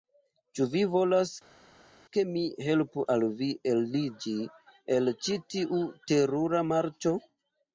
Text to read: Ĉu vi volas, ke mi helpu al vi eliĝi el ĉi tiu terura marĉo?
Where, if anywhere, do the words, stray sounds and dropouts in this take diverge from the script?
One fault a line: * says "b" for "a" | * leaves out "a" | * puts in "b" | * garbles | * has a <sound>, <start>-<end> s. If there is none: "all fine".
all fine